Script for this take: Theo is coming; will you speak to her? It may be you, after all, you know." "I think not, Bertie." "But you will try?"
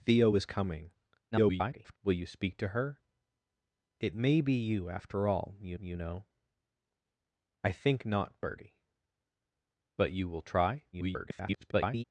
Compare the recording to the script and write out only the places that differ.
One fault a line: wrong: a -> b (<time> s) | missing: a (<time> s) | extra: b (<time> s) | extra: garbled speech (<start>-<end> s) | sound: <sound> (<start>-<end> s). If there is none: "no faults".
extra: garbled speech (1.3-2.0 s)
extra: you (5.8 s)
extra: garbled speech (10.9-12.0 s)